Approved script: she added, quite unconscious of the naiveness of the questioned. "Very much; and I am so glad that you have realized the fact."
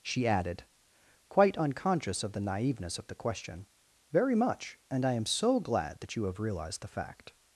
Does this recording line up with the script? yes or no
no